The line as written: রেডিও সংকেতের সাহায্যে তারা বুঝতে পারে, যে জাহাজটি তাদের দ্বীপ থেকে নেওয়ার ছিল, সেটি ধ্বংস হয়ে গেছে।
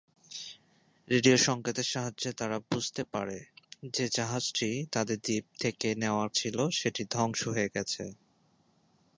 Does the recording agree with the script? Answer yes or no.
yes